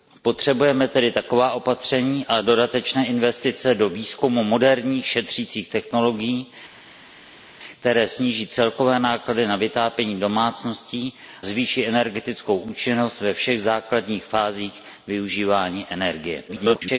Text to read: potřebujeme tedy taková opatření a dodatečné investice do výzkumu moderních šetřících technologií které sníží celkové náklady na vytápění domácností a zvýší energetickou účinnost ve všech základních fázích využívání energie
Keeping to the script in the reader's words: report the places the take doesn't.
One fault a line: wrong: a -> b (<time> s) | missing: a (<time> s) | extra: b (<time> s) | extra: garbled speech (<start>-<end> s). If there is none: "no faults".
missing: a (11.1 s)
extra: garbled speech (16.5-17.0 s)